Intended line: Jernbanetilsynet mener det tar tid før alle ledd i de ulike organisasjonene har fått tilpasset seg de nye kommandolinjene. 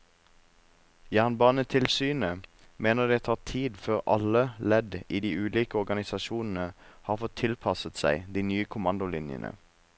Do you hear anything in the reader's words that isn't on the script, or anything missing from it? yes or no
no